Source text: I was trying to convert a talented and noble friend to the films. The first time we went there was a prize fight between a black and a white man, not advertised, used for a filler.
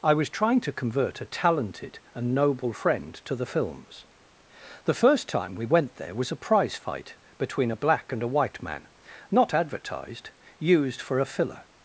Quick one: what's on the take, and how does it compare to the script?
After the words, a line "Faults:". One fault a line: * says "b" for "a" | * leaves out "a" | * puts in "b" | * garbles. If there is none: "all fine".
I was trying to convert a talented and noble friend to the films. The first time we went there was a prize fight between a black and a white man, not advertised, used for a filler.
Faults:
all fine